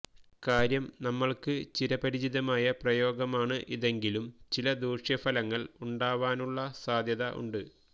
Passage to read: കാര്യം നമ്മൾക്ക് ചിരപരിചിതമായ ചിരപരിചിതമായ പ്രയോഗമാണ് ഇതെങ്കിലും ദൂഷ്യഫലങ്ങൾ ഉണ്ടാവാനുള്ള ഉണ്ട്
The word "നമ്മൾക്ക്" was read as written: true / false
true